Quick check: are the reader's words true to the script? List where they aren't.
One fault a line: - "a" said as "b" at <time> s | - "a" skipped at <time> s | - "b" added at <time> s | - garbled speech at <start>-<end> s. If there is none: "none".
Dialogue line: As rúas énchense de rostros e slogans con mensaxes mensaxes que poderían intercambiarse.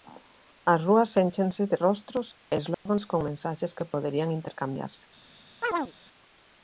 - "mensaxes" skipped at 3.8 s